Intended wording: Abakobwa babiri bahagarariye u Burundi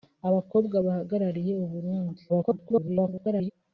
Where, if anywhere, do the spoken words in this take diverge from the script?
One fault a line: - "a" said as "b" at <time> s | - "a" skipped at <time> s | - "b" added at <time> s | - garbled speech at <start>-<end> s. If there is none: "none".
- "babiri" skipped at 0.8 s
- garbled speech at 2.3-3.5 s